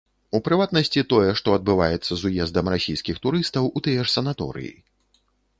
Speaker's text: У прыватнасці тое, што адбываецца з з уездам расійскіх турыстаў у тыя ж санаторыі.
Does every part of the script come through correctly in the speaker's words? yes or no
no